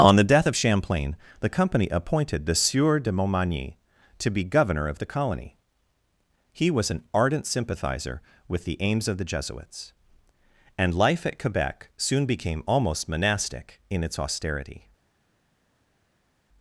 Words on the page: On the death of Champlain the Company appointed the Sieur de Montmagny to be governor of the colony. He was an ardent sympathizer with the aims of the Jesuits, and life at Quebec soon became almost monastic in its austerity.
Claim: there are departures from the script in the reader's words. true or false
false